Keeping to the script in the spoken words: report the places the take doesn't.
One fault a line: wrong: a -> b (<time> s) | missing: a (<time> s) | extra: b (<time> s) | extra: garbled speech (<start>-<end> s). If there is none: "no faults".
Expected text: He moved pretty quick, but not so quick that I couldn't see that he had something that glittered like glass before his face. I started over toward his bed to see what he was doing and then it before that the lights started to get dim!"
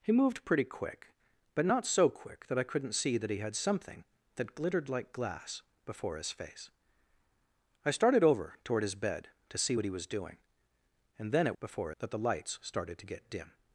no faults